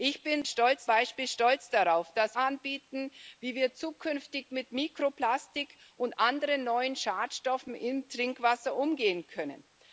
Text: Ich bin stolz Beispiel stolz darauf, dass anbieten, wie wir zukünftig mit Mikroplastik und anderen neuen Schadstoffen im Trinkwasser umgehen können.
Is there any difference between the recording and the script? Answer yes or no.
no